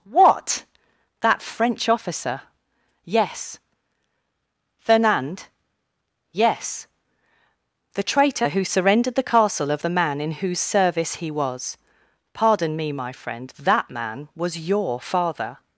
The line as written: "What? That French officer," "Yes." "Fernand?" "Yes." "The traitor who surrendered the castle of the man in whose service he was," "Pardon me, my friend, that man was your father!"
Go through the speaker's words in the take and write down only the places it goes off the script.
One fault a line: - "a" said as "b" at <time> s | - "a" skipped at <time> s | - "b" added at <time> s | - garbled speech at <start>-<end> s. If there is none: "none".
none